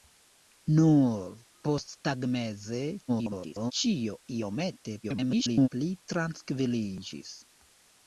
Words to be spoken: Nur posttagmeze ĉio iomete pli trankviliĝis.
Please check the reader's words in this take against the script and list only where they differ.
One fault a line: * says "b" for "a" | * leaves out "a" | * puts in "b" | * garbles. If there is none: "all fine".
* garbles
* garbles